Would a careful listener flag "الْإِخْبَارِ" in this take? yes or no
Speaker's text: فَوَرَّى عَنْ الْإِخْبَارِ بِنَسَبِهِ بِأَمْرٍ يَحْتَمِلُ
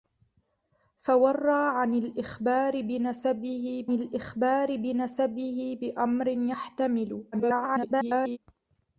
no